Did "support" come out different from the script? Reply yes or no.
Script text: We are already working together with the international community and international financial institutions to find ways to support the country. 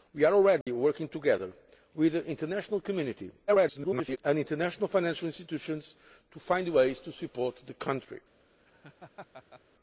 no